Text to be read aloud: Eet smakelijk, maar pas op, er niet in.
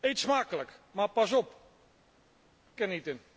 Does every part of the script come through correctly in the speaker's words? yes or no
yes